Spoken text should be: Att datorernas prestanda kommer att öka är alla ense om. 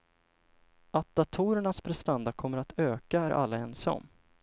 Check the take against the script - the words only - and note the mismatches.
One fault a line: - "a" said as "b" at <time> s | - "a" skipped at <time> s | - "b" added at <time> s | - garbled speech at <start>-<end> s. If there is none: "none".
none